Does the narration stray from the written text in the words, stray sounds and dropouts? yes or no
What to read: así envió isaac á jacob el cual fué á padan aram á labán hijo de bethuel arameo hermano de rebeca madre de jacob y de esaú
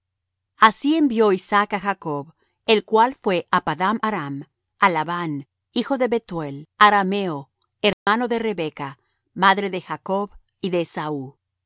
yes